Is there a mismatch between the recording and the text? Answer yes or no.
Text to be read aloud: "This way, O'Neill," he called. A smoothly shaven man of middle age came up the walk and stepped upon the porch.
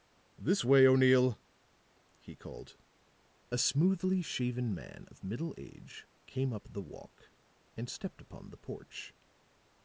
no